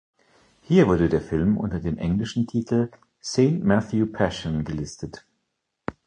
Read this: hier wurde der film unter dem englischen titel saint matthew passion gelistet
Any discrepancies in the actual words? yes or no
no